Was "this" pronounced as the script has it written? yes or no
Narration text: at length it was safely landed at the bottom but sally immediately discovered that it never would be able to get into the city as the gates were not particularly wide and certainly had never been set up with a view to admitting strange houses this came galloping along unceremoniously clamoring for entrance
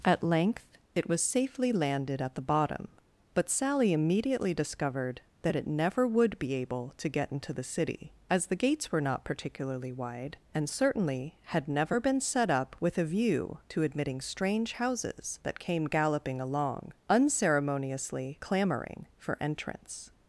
no